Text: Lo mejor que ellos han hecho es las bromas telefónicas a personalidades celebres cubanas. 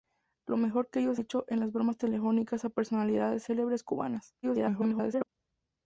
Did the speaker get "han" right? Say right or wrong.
wrong